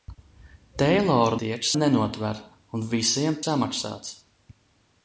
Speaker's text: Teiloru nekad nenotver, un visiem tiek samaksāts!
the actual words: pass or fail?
fail